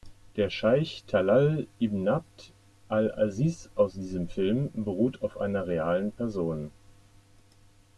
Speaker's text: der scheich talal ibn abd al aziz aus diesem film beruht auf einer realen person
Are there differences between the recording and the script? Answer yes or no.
no